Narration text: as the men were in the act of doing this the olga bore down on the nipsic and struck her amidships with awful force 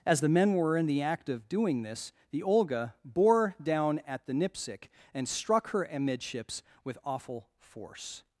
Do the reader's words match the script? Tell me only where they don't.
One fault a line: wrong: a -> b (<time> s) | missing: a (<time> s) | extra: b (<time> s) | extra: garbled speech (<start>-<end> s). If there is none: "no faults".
wrong: on -> at (4.1 s)